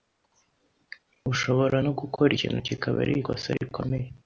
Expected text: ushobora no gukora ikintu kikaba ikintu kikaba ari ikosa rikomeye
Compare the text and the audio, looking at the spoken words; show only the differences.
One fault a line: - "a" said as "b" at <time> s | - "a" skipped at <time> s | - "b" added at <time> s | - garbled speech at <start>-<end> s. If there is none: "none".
- "ikintu kikaba" skipped at 3.0 s